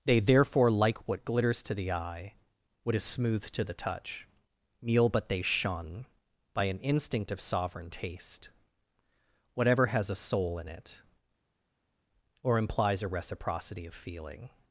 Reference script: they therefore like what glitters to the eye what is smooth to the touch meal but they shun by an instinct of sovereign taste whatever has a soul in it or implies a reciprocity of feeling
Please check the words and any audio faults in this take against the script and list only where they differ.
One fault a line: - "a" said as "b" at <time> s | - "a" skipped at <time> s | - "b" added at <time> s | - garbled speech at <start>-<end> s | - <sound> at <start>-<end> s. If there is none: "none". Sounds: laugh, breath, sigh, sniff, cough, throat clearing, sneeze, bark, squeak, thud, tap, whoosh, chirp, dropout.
none